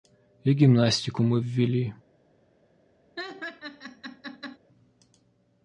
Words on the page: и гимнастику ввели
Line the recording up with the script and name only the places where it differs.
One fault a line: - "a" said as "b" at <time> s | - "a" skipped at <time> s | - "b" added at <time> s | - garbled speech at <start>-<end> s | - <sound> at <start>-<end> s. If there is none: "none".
- "мы" added at 1.2 s
- laugh at 3.2-4.6 s